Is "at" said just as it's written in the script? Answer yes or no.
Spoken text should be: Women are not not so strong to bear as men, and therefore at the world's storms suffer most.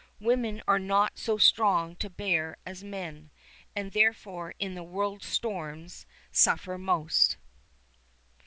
no